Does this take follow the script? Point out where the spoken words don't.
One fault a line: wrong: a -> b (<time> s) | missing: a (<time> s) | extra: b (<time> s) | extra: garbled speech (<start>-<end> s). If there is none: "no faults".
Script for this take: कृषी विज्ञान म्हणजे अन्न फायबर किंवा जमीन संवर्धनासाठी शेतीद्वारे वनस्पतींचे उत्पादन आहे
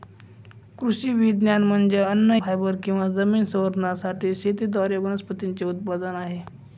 no faults